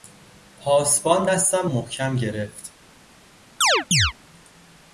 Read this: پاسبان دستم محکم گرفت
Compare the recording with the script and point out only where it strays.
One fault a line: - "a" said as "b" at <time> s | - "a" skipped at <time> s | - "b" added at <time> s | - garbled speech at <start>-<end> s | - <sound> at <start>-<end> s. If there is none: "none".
- chirp at 3.6-4.1 s